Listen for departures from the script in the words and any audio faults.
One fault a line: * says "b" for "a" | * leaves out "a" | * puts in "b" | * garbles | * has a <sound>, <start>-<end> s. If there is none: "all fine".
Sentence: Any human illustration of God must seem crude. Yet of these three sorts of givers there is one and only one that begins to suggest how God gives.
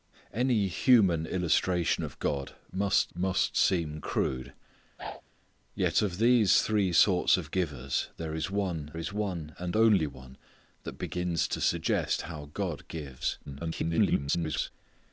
* puts in "must"
* has a whoosh, 5.0-5.2 s
* puts in "is one"
* garbles